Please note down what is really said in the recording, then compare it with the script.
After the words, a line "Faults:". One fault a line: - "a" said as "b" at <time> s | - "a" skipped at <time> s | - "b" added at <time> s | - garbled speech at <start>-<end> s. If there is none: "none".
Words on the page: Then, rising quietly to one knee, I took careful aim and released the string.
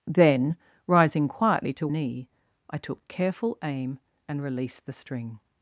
Then, rising quietly to knee, I took careful aim and released the string.
Faults:
- "one" skipped at 1.9 s